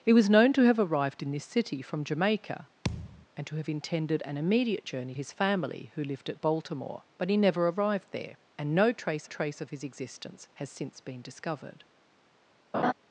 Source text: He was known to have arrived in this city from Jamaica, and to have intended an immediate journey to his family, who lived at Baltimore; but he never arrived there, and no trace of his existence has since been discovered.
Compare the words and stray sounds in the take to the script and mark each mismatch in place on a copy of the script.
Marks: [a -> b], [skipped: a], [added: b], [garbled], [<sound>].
He was known to have arrived in this city from Jamaica, [thud] and to have intended an immediate journey [skipped: to] his family, who lived at Baltimore; but he never arrived there, and no trace [added: trace] of his existence has since been discovered. [laugh]